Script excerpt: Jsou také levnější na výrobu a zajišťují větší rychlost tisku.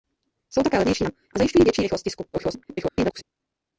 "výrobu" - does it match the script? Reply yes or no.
no